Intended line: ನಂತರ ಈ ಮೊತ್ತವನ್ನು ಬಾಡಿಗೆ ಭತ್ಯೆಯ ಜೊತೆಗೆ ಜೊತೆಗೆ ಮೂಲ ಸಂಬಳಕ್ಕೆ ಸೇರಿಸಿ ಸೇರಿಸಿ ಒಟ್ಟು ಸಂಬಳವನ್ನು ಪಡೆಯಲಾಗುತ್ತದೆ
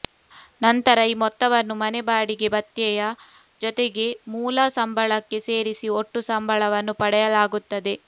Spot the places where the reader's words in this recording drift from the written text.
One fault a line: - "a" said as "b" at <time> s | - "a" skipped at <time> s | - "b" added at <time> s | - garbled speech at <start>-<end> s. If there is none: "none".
- "ಮನೆ" added at 1.8 s
- "ಜೊತೆಗೆ" skipped at 4.1 s
- "ಸೇರಿಸಿ" skipped at 5.9 s